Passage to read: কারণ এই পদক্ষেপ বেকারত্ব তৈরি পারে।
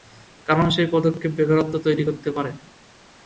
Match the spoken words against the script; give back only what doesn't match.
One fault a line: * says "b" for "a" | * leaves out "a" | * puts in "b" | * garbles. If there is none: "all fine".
* says "সেই" for "এই"
* puts in "করতে"